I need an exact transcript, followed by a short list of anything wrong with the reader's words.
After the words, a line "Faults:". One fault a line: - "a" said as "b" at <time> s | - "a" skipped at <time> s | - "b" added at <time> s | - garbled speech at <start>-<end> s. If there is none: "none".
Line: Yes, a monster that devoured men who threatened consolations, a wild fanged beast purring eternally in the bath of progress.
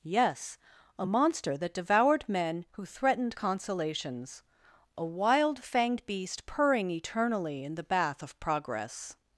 Yes, a monster that devoured men who threatened consolations, a wild fanged beast purring eternally in the bath of progress.
Faults:
none